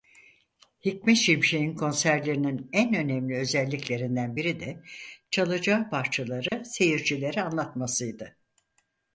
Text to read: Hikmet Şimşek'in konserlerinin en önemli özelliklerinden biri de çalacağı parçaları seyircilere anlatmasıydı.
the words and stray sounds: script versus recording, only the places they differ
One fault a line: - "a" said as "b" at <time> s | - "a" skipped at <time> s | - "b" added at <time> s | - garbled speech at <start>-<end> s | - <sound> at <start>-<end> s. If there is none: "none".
- dropout at 6.5-6.5 s